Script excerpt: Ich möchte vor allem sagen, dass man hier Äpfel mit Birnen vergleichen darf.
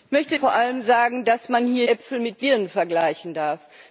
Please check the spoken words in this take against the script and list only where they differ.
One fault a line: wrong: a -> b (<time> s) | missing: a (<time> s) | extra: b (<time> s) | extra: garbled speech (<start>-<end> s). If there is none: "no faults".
no faults